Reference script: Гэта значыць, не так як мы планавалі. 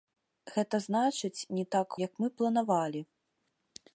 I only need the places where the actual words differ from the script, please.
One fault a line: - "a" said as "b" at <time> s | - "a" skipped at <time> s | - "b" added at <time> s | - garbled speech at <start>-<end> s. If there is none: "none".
none